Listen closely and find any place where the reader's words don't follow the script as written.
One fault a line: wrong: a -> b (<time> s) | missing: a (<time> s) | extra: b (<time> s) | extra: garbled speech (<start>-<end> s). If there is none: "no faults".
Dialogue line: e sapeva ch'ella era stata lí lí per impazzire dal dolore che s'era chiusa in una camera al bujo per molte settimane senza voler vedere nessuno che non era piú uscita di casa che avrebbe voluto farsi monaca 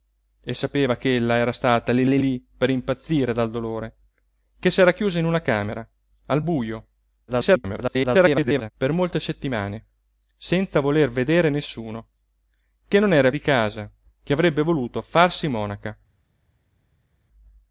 extra: lí (2.2 s)
extra: garbled speech (7.3-8.7 s)
missing: piú uscita (13.3 s)